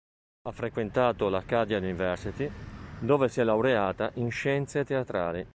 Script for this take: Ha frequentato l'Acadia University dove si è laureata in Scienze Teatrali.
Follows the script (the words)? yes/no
yes